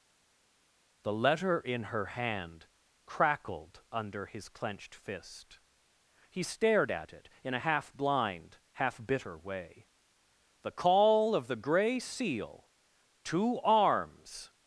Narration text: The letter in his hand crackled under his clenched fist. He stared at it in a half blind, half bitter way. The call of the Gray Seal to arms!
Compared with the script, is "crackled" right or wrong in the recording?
right